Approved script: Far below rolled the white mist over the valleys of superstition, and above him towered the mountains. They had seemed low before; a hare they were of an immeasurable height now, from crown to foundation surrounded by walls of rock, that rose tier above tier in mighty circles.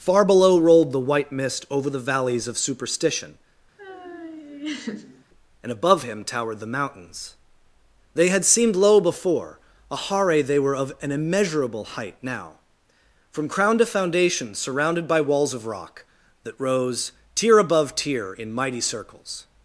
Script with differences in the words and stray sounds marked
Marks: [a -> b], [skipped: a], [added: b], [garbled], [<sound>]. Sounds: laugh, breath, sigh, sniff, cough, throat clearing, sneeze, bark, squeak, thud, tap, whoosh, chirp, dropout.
Far below rolled the white mist over the valleys of superstition, [laugh] and above him towered the mountains. They had seemed low before; a hare they were of an immeasurable height now, from crown to foundation surrounded by walls of rock, that rose tier above tier in mighty circles.